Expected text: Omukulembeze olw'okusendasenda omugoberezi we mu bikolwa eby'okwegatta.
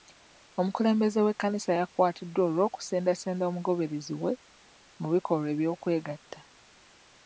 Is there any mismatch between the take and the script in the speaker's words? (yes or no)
yes